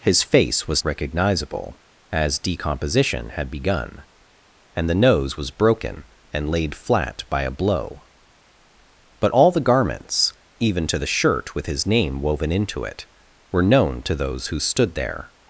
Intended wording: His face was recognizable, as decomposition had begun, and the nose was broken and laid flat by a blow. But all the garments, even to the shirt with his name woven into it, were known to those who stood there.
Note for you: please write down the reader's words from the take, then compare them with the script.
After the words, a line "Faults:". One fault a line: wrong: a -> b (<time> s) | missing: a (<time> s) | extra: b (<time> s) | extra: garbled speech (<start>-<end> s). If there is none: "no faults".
His face was recognizable, as decomposition had begun, and the nose was broken and laid flat by a blow. But all the garments, even to the shirt with his name woven into it, were known to those who stood there.
Faults:
no faults